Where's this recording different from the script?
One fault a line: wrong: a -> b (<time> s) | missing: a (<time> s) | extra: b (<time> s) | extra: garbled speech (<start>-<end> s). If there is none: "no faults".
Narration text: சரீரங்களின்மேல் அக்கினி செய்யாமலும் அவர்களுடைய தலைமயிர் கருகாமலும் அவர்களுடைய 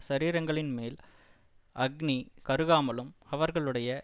missing: செய்யாமலும் அவர்களுடைய தலைமயிர் (2.2 s)